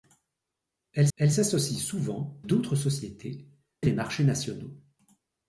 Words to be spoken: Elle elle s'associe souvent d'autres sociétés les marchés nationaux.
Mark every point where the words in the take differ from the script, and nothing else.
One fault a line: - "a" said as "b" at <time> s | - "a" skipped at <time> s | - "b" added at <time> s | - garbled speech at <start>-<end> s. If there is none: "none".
none